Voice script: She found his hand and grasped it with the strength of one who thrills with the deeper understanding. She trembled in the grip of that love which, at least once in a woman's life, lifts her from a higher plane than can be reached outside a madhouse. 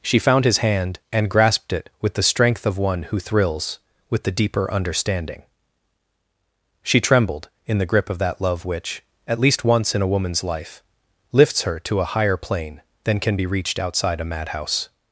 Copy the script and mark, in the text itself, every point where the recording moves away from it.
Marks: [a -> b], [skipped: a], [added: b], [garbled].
She found his hand and grasped it with the strength of one who thrills with the deeper understanding. She trembled in the grip of that love which, at least once in a woman's life, lifts her [from -> to] a higher plane than can be reached outside a madhouse.